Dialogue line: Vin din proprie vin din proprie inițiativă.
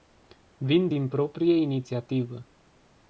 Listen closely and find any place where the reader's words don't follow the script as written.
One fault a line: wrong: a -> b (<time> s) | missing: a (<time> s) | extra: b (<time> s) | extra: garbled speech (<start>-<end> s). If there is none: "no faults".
missing: vin din proprie (1.6 s)